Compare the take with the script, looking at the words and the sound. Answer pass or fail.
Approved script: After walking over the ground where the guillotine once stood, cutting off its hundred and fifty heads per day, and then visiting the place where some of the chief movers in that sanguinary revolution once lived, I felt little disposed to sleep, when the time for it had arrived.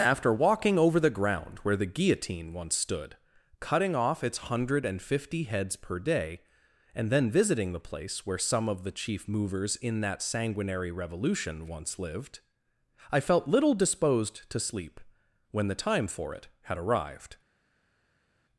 pass